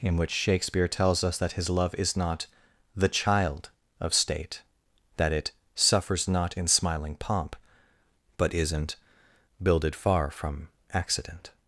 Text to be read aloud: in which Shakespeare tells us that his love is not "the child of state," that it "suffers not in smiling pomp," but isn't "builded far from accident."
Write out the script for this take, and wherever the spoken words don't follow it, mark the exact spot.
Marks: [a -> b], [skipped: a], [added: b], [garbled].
in which Shakespeare tells us that his love is not "the child of state," that it "suffers not in smiling pomp," but isn't "builded far from accident."